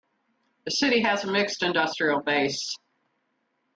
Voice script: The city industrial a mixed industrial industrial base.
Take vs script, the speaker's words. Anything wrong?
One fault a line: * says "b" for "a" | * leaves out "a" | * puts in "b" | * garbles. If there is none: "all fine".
* says "has" for "industrial"
* leaves out "industrial"